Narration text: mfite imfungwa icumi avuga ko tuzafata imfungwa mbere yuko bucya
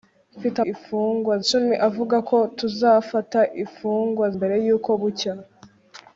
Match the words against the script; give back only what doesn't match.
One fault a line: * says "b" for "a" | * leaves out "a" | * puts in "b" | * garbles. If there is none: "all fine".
all fine